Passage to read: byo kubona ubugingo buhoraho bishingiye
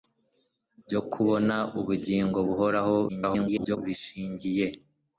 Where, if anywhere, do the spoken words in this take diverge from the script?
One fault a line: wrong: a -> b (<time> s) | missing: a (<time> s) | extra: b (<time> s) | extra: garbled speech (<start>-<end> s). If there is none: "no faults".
extra: garbled speech (3.1-3.8 s)